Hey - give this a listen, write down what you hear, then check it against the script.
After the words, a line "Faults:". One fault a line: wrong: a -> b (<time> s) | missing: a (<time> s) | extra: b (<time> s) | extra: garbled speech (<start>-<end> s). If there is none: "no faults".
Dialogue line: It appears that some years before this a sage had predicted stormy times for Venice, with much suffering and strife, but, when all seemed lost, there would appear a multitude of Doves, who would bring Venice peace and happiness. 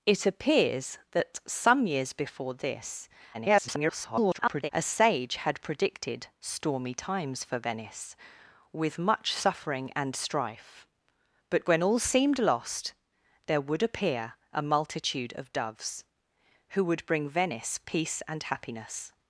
It appears that some years before this [garbled] a sage had predicted stormy times for Venice, with much suffering and strife, but, when all seemed lost, there would appear a multitude of Doves, who would bring Venice peace and happiness.
Faults:
extra: garbled speech (3.3-4.7 s)